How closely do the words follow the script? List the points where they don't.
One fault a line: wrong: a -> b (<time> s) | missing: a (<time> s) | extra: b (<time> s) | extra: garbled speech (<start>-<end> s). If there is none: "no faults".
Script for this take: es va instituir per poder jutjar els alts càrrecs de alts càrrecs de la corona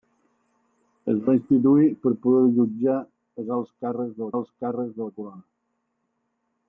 no faults